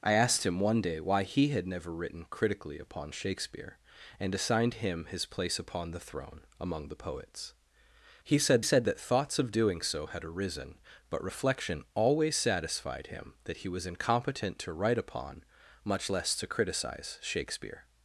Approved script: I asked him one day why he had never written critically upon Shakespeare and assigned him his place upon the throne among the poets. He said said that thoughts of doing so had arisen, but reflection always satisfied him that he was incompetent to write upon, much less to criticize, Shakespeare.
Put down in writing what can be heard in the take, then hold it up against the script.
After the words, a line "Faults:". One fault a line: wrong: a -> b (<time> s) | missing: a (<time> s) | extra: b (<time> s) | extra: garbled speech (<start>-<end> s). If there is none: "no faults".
I asked him one day why he had never written critically upon Shakespeare and assigned him his place upon the throne among the poets. He said said that thoughts of doing so had arisen, but reflection always satisfied him that he was incompetent to write upon, much less to criticize, Shakespeare.
Faults:
no faults